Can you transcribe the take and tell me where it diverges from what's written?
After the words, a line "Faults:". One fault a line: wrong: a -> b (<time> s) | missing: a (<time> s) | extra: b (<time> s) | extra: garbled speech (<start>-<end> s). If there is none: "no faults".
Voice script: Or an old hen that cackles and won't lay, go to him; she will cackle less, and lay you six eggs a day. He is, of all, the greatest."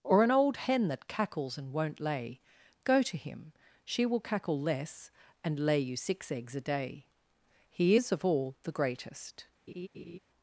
Or an old hen that cackles and won't lay, go to him; she will cackle less, and lay you six eggs a day. He is, of all, the greatest."
Faults:
no faults